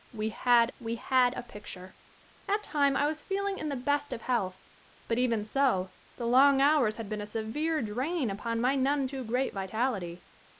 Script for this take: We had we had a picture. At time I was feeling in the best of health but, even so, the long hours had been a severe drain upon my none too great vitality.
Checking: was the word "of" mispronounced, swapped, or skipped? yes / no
no